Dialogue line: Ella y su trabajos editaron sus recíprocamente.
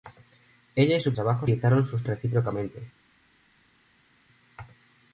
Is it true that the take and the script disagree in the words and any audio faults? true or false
false